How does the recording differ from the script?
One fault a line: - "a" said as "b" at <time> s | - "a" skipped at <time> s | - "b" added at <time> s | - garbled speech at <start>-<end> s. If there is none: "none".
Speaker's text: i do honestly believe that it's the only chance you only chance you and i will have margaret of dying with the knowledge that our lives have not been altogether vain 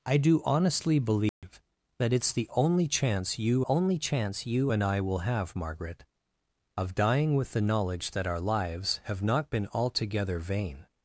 none